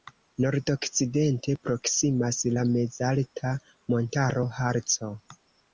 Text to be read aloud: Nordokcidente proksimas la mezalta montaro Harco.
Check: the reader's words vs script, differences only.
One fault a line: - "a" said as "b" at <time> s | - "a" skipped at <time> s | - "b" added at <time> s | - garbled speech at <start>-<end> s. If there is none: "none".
none